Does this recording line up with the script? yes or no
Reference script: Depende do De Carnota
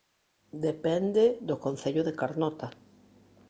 no